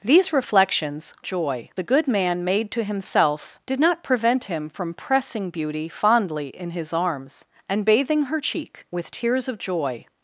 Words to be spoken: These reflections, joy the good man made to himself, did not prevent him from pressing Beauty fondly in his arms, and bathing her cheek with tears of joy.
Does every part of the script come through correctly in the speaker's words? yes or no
yes